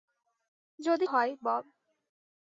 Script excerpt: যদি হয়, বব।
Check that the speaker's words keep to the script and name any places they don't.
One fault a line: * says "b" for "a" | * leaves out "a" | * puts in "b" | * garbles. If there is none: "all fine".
all fine